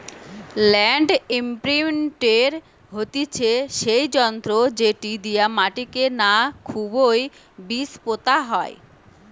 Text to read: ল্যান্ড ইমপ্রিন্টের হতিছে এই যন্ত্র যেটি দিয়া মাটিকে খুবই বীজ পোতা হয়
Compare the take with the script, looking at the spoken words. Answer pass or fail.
fail